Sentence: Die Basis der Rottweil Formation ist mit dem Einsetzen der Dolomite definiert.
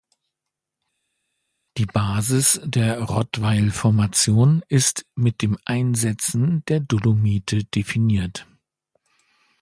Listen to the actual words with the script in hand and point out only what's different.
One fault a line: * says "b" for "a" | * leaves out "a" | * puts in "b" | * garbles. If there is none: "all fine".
all fine